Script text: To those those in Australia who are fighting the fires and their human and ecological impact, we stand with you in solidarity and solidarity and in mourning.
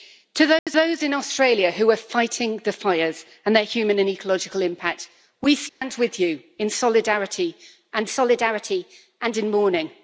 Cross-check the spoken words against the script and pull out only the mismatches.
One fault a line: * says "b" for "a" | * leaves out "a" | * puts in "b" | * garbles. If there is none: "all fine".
all fine